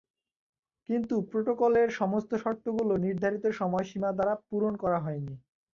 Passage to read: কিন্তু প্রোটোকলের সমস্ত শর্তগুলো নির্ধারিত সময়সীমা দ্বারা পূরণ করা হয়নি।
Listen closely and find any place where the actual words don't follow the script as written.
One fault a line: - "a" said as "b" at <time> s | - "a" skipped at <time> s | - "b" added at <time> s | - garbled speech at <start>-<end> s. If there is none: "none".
none